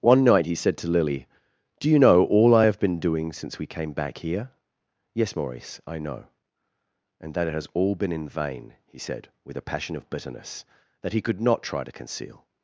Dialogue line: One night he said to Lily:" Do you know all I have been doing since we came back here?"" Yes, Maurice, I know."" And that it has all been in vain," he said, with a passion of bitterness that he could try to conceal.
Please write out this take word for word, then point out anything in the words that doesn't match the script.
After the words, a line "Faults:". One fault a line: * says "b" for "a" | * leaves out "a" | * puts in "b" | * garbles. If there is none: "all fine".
One night he said to Lily:" Do you know all I have been doing since we came back here?"" Yes, Maurice, I know."" And that it has all been in vain," he said, with a passion of bitterness that he could not try to conceal.
Faults:
* puts in "not"